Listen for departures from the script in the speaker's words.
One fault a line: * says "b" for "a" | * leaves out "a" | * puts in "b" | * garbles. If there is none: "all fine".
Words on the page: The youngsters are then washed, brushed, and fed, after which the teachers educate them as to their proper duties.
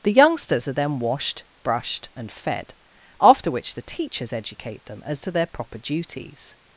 all fine